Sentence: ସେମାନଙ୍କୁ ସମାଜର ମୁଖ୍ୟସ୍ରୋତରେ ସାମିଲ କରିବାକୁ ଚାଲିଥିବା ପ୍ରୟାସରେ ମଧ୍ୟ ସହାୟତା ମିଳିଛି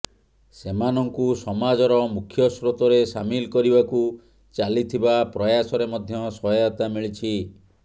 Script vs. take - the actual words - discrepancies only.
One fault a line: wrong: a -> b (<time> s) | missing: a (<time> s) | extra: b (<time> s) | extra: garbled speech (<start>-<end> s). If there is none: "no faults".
no faults